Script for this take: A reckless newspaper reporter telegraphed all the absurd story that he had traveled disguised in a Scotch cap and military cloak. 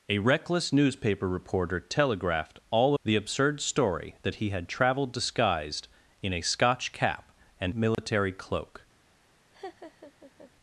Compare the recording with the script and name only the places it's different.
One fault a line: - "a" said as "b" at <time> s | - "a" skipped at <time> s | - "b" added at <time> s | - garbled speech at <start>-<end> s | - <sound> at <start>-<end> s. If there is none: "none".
- dropout at 7.9-8.0 s
- laugh at 9.5-10.5 s